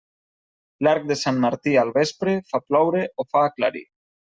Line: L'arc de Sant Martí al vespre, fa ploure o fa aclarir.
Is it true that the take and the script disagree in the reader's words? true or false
false